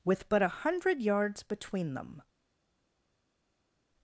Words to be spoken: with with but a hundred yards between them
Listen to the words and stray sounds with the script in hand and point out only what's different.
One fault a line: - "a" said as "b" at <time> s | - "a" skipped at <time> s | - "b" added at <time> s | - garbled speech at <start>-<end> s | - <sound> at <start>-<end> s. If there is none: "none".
- "with" skipped at 0.3 s